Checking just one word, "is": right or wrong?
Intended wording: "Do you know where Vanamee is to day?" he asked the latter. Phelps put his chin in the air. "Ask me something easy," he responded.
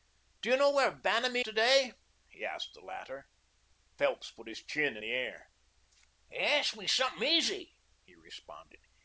wrong